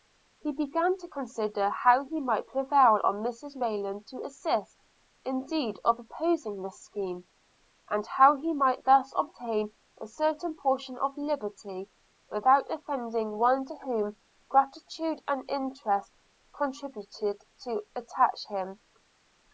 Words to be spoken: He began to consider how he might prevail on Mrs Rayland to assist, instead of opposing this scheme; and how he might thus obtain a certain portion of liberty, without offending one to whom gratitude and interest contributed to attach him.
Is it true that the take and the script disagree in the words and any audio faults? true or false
false